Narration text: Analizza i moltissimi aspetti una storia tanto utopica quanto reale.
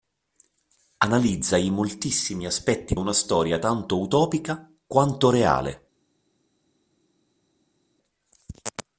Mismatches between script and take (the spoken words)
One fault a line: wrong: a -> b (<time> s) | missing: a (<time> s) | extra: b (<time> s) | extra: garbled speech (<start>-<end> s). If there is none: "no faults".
no faults